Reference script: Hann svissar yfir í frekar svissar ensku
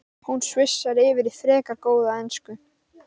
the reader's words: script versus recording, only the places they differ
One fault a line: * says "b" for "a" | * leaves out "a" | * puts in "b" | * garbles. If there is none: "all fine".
* says "Hún" for "Hann"
* says "góða" for "svissar"